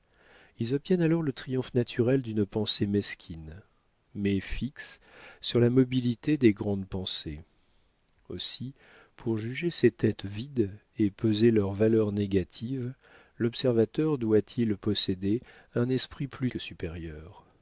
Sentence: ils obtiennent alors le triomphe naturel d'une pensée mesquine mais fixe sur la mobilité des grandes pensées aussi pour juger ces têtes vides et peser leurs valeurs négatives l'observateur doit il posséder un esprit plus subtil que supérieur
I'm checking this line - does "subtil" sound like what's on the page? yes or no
no